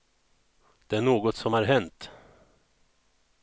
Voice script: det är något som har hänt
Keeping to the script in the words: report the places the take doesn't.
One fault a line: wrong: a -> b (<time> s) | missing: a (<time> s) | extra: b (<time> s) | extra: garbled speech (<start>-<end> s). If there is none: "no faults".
no faults